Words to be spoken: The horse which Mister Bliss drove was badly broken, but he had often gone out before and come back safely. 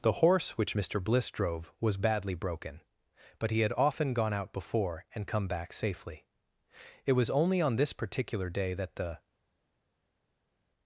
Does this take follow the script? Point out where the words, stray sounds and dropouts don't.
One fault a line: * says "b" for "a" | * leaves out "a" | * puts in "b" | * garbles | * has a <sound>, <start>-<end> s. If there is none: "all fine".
* puts in "It was only on this particular day that the"